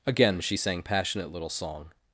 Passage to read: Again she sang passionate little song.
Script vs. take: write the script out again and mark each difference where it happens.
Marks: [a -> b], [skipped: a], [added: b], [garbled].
Again she sang passionate little song.